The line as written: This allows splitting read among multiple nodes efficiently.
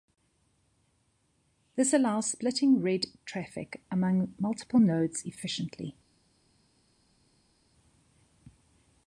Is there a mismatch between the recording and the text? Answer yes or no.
yes